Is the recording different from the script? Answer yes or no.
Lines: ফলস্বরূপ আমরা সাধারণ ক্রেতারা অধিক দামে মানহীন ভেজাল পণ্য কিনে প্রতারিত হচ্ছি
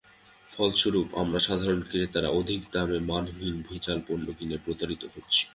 no